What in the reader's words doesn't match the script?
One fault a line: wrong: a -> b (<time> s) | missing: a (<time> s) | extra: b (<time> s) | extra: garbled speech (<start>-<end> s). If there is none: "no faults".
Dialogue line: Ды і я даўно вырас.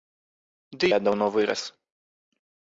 missing: і (0.9 s)